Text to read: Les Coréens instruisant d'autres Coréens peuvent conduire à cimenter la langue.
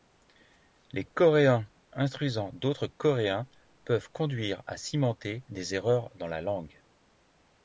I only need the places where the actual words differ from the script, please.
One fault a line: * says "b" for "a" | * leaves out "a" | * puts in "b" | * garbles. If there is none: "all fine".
* puts in "des erreurs dans"